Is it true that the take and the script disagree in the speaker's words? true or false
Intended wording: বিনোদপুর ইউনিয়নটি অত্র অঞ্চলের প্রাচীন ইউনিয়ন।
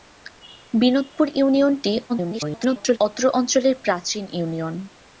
true